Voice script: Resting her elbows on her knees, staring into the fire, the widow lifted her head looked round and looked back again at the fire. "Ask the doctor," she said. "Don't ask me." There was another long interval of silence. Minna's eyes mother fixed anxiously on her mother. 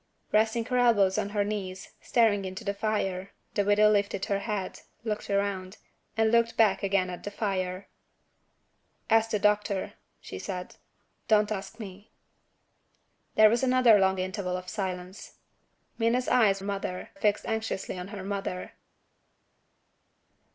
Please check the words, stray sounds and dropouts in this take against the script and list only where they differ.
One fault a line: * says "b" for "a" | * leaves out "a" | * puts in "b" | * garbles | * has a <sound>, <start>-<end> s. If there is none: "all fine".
all fine